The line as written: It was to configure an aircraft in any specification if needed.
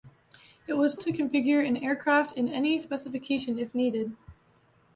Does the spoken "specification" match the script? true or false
true